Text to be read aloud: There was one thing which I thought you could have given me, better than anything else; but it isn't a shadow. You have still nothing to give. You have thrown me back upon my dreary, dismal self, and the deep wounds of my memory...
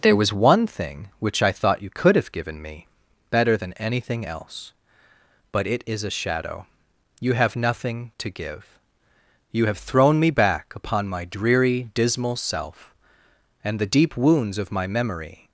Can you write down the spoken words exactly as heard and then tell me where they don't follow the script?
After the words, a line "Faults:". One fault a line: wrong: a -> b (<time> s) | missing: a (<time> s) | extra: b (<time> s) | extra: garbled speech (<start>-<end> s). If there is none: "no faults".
There was one thing which I thought you could have given me, better than anything else; but it is a shadow. You have nothing to give. You have thrown me back upon my dreary, dismal self, and the deep wounds of my memory...
Faults:
wrong: isn't -> is (5.9 s)
missing: still (7.6 s)